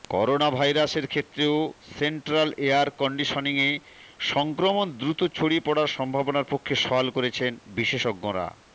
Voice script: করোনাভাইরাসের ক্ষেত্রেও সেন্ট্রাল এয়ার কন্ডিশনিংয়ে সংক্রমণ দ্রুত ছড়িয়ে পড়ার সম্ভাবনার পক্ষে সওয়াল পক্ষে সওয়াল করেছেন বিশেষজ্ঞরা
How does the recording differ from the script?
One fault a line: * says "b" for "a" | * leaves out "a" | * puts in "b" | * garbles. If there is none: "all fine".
* leaves out "পক্ষে সওয়াল"